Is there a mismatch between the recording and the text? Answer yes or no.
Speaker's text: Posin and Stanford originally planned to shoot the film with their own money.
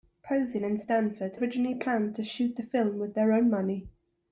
no